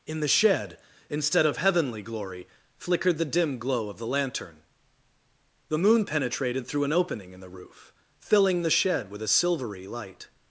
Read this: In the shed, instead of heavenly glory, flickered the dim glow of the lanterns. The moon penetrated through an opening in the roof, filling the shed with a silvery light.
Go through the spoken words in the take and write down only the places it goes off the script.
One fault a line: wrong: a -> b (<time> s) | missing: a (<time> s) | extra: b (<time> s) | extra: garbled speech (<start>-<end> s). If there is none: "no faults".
wrong: lanterns -> lantern (4.1 s)